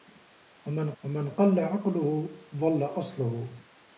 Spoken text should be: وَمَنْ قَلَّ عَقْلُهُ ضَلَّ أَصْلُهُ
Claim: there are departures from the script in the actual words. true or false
true